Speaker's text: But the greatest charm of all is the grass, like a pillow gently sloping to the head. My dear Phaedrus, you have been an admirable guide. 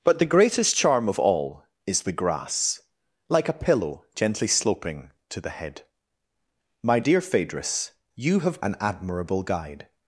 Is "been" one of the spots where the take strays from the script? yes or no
yes